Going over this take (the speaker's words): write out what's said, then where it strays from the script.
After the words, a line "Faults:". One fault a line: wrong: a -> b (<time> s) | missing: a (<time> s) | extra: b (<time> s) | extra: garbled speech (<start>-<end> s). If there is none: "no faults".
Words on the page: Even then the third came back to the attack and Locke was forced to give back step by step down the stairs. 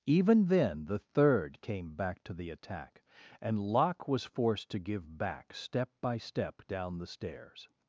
Even then the third came back to the attack and Locke was forced to give back step by step down the stairs.
Faults:
no faults